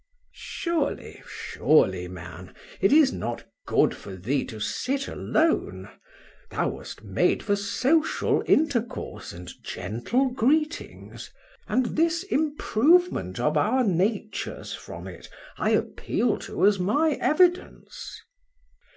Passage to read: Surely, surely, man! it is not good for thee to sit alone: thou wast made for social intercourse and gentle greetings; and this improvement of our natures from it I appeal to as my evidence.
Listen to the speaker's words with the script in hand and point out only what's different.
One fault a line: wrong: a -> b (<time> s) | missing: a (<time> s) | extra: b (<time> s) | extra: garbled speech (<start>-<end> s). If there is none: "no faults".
no faults